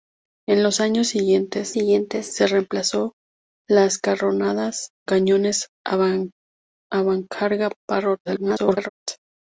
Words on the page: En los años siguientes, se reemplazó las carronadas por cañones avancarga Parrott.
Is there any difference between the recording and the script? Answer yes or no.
yes